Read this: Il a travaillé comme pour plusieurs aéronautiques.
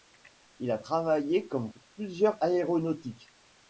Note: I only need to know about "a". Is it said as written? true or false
true